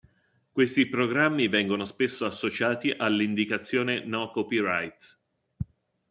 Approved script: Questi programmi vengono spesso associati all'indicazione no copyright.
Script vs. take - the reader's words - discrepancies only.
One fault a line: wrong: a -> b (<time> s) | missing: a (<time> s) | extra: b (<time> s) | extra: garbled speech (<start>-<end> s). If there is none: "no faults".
no faults